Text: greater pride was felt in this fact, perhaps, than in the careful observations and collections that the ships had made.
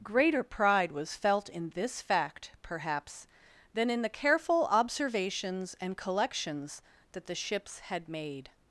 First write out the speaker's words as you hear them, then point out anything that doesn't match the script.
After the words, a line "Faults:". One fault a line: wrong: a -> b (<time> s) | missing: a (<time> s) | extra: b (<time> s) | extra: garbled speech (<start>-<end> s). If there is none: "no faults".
greater pride was felt in this fact, perhaps, than in the careful observations and collections that the ships had made.
Faults:
no faults